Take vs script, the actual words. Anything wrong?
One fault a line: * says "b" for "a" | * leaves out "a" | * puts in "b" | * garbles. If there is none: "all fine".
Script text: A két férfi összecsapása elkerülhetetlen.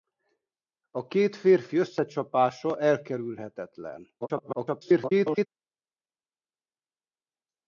* garbles